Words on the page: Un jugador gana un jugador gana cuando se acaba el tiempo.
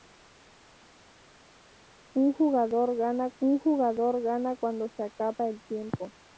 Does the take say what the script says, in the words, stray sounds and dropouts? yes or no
yes